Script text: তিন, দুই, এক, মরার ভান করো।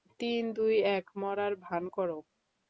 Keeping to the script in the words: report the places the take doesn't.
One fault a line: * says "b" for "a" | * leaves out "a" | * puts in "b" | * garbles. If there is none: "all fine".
all fine